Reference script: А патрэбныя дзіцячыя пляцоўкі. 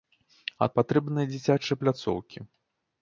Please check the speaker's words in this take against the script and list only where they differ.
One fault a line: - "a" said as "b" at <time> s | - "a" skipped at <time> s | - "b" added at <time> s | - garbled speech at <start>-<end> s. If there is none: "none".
none